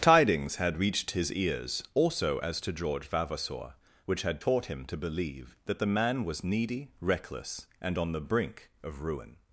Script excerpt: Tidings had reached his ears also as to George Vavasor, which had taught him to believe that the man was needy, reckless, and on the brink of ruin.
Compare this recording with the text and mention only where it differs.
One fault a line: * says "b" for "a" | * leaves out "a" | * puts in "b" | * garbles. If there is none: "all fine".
all fine